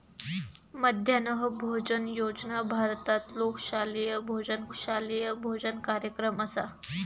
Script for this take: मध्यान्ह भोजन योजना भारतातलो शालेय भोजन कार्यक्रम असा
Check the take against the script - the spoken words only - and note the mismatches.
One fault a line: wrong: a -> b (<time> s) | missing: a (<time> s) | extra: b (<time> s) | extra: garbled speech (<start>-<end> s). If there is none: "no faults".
extra: शालेय भोजन (4.8 s)